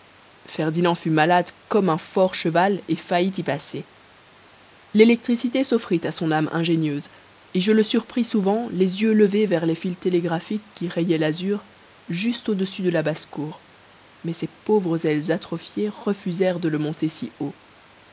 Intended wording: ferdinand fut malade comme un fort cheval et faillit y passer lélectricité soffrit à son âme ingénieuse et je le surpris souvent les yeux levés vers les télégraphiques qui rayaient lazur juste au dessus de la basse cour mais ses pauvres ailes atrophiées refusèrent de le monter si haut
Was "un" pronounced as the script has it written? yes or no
yes